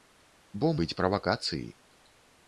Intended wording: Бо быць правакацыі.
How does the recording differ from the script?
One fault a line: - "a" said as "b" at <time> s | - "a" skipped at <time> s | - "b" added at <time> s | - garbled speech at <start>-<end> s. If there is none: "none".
none